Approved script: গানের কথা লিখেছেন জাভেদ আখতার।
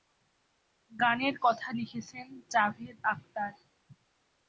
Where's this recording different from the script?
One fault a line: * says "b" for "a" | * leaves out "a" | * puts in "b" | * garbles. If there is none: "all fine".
all fine